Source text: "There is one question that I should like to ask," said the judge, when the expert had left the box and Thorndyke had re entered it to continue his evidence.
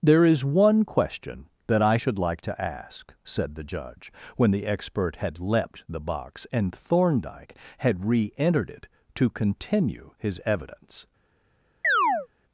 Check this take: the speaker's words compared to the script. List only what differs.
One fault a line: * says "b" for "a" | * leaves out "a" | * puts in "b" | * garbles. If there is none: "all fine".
* says "leapt" for "left"